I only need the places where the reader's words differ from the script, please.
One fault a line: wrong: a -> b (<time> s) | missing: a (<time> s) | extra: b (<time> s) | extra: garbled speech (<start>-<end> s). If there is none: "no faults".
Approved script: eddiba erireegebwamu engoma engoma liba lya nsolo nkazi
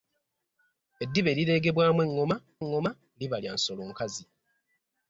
no faults